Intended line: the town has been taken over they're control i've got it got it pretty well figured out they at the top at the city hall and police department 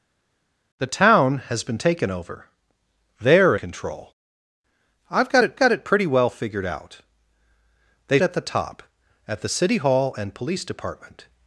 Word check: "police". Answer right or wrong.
right